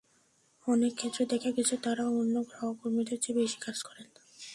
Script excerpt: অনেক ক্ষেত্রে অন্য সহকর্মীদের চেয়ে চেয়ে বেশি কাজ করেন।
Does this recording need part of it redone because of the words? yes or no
yes